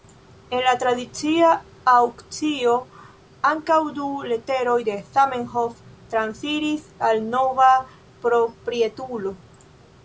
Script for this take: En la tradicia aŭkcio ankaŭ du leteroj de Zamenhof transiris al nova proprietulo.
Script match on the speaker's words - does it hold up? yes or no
yes